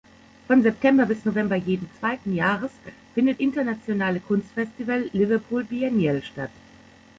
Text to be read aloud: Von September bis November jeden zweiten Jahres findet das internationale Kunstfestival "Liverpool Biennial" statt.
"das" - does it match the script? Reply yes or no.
no